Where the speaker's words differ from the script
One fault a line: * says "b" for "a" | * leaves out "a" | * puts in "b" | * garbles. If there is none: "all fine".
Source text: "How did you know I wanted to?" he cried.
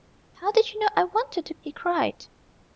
all fine